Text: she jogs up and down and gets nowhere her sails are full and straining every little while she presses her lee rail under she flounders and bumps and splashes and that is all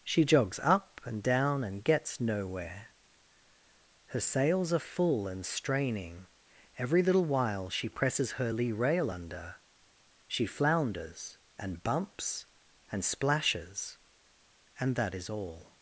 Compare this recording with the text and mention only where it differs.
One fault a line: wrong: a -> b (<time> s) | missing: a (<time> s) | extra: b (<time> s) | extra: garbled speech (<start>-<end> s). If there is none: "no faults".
no faults